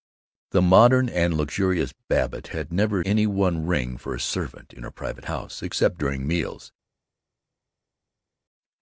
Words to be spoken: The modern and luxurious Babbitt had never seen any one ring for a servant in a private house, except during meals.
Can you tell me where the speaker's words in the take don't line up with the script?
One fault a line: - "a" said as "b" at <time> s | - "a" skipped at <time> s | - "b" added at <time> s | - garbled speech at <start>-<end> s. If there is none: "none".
- "seen" skipped at 3.0 s